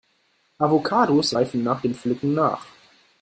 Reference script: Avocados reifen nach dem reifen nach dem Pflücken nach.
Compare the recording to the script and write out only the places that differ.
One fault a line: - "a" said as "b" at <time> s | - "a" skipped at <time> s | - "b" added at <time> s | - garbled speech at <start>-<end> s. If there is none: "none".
- "reifen nach dem" skipped at 1.9 s